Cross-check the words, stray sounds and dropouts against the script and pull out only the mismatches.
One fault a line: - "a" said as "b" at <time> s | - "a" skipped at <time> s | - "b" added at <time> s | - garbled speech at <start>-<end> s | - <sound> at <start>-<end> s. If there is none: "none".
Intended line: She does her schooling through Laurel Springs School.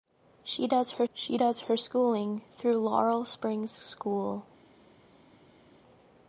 - "she does her" added at 1.1 s